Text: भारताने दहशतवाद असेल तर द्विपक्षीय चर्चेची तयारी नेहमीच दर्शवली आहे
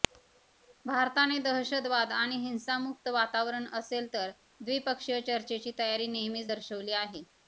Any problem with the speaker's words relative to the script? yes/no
yes